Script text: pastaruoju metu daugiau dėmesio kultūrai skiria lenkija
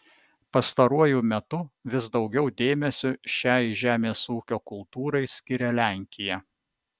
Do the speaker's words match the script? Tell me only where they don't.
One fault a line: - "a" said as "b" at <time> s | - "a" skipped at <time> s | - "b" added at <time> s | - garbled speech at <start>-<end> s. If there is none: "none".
- "vis" added at 1.9 s
- "šiai žemės ūkio" added at 3.4 s